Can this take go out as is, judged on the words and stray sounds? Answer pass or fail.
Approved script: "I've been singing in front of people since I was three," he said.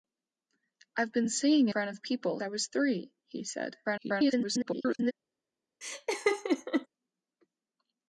fail